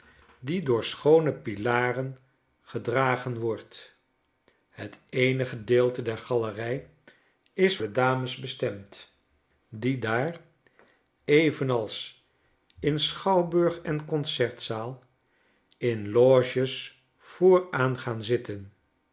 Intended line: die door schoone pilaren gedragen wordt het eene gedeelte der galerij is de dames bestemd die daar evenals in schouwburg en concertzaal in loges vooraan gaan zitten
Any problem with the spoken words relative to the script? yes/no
no